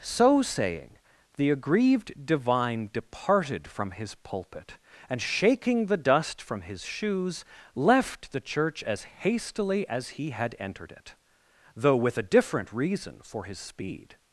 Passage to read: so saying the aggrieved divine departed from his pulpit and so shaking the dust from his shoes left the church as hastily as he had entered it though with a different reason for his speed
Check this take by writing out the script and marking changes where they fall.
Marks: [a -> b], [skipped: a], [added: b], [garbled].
so saying the aggrieved divine departed from his pulpit and [skipped: so] shaking the dust from his shoes left the church as hastily as he had entered it though with a different reason for his speed